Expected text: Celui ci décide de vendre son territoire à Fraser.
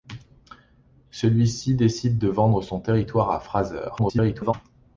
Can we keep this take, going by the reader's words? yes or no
no